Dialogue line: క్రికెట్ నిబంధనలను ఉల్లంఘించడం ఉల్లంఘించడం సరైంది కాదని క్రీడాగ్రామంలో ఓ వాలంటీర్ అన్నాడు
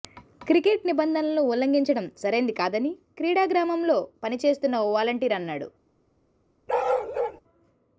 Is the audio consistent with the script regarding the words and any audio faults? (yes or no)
no